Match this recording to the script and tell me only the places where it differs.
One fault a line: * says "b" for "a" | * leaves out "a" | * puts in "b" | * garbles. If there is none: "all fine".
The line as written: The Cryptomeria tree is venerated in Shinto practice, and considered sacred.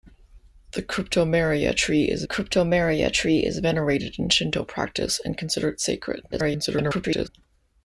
* puts in "Cryptomeria tree is"
* garbles